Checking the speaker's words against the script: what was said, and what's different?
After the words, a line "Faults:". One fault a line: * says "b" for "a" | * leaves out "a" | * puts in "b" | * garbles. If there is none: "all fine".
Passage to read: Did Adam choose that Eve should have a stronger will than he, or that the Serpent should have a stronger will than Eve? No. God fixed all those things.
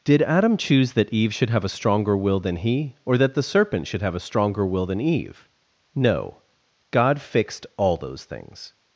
Did Adam choose that Eve should have a stronger will than he, or that the Serpent should have a stronger will than Eve? No. God fixed all those things.
Faults:
all fine